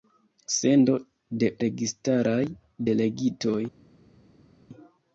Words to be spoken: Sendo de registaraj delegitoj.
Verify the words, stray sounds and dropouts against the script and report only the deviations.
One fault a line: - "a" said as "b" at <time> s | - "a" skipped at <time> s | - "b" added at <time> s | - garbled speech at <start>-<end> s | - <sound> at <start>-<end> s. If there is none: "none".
none